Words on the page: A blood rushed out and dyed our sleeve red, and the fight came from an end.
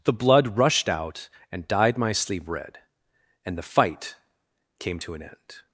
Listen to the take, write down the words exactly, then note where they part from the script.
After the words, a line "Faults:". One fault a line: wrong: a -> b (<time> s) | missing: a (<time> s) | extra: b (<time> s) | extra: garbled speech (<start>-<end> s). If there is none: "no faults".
The blood rushed out and dyed my sleeve red, and the fight came to an end.
Faults:
wrong: A -> The (0.0 s)
wrong: our -> my (2.0 s)
wrong: from -> to (5.0 s)